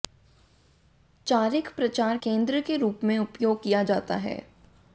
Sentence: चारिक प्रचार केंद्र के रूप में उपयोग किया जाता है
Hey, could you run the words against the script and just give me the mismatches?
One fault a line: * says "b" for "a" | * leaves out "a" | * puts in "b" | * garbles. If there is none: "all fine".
all fine